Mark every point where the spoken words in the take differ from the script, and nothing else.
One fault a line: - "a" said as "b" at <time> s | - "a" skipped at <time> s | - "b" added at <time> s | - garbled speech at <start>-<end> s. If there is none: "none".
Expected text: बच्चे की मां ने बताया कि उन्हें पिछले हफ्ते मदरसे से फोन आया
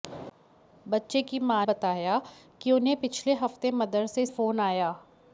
- "ने" skipped at 1.6 s
- "से" skipped at 4.3 s